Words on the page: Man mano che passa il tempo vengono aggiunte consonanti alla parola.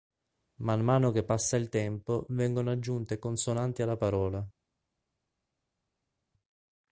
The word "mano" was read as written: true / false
true